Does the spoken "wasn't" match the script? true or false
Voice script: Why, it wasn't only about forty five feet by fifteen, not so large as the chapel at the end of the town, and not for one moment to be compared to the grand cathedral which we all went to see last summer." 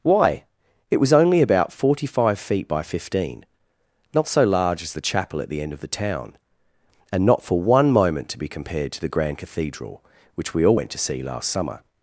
false